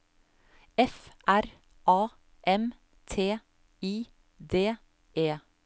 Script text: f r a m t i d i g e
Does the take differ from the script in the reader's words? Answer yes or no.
yes